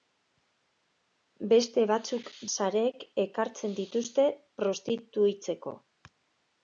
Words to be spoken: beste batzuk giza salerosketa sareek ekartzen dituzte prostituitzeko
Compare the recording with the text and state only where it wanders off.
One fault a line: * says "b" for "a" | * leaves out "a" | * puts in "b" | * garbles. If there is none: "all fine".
* leaves out "giza salerosketa"